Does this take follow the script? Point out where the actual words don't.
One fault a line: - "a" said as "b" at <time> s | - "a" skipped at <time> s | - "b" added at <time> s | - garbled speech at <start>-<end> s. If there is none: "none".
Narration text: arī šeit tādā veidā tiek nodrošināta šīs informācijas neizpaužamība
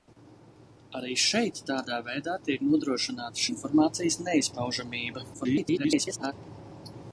- "šīs" skipped at 3.5 s
- garbled speech at 5.3-6.3 s